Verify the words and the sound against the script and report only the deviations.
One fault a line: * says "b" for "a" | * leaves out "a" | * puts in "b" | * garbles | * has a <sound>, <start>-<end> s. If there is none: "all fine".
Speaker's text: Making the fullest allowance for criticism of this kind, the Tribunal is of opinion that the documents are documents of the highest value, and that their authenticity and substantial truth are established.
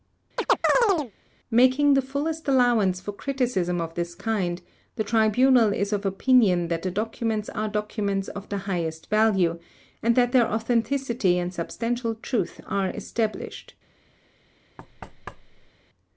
* has a chirp, 0.4-1.1 s
* has a thud, 14.8-15.7 s